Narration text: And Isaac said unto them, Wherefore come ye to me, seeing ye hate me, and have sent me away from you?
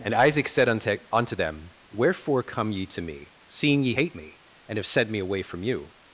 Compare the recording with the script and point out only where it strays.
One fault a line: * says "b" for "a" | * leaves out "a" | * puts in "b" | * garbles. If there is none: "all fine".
* puts in "unto"